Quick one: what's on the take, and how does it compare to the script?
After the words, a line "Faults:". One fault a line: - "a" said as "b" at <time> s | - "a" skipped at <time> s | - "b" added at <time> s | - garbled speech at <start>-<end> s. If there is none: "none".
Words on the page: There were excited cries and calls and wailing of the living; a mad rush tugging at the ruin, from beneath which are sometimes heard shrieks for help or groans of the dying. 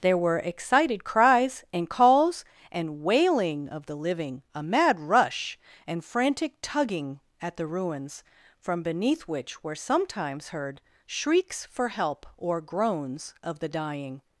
There were excited cries and calls and wailing of the living; a mad rush and frantic tugging at the ruins, from beneath which were sometimes heard shrieks for help or groans of the dying.
Faults:
- "and frantic" added at 5.8 s
- "ruin" said as "ruins" at 7.7 s
- "are" said as "were" at 9.6 s